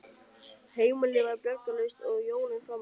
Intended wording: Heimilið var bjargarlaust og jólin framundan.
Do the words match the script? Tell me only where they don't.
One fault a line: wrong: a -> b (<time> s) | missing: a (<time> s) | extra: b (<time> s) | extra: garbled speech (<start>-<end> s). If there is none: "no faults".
no faults